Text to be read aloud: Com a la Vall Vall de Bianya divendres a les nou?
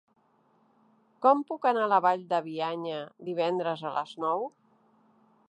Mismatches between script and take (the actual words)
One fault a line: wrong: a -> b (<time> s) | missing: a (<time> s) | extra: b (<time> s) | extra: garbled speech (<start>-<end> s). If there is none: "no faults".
extra: puc anar (1.5 s)
missing: Vall (2.2 s)